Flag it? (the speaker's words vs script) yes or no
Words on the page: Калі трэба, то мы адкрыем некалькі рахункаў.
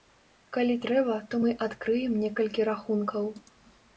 no